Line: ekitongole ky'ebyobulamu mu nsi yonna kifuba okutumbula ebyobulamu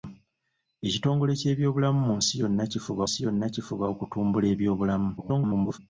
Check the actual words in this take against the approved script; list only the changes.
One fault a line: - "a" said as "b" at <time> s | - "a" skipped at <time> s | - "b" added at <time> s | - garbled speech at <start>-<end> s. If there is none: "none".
- "nsi yonna kifuba" added at 3.0 s
- garbled speech at 5.2-5.8 s